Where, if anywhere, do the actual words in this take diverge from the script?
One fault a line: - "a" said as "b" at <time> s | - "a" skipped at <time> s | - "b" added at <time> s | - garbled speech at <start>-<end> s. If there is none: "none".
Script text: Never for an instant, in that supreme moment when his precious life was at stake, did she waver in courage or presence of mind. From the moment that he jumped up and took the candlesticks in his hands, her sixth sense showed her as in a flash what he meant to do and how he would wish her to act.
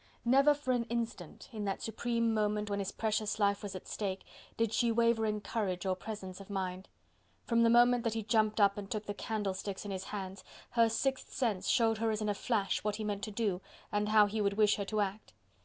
none